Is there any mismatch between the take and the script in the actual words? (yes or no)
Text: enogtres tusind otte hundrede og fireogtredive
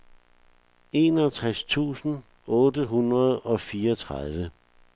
no